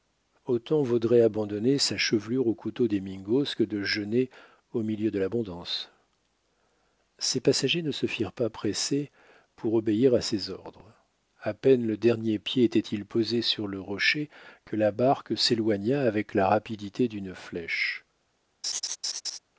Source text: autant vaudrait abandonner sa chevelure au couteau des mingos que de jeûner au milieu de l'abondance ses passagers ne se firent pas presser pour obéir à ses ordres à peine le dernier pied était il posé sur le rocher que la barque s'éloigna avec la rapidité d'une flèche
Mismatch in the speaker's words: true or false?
false